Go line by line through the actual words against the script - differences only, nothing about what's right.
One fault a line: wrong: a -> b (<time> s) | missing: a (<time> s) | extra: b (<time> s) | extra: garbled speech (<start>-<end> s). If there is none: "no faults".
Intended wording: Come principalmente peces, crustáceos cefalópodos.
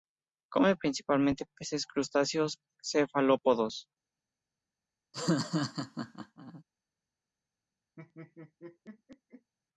no faults